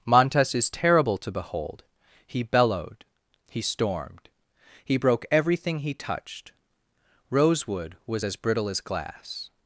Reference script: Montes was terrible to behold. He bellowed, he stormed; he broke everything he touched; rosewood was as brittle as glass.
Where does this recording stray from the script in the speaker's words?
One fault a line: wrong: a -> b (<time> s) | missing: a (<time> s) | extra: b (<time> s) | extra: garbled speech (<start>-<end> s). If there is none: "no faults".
wrong: was -> is (0.6 s)